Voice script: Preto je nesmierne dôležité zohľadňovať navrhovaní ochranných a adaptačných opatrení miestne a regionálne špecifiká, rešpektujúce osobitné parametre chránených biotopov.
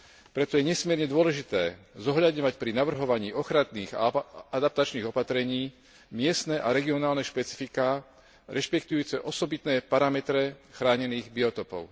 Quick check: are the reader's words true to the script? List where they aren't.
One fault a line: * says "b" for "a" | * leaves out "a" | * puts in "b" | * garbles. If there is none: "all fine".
* puts in "pri"